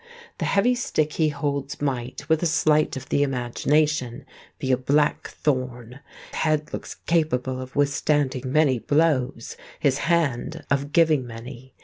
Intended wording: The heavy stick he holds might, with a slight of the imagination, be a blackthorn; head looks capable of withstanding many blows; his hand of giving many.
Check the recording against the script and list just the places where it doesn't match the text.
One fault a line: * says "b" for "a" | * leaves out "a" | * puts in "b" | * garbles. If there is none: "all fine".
all fine